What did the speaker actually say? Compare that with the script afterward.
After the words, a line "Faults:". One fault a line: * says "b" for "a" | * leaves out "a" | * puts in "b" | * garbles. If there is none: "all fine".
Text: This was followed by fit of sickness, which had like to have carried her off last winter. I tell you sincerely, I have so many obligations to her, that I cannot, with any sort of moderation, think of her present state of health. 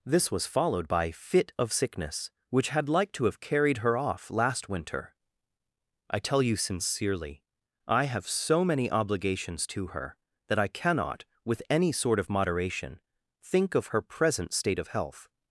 This was followed by fit of sickness, which had like to have carried her off last winter. I tell you sincerely, I have so many obligations to her, that I cannot, with any sort of moderation, think of her present state of health.
Faults:
all fine